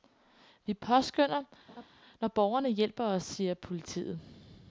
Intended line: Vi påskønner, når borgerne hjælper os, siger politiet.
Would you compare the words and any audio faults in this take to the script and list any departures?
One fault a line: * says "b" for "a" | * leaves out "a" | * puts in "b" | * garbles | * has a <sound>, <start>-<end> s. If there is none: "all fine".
* has a laugh, 1.7-1.9 s